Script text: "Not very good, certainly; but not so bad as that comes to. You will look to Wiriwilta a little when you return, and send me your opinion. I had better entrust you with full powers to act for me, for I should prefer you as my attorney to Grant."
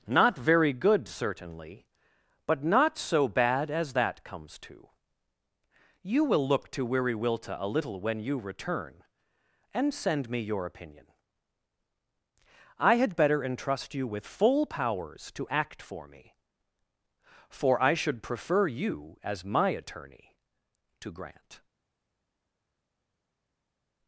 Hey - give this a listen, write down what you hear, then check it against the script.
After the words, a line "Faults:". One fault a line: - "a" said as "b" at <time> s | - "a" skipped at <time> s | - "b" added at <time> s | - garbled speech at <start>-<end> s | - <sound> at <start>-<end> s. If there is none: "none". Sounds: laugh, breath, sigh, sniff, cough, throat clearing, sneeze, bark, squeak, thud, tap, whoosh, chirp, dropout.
"Not very good, certainly; but not so bad as that comes to. You will look to Wiriwilta a little when you return, and send me your opinion. I had better entrust you with full powers to act for me, for I should prefer you as my attorney to Grant."
Faults:
none